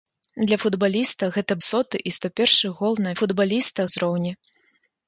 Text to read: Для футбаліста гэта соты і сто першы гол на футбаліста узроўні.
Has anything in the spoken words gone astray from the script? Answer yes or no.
no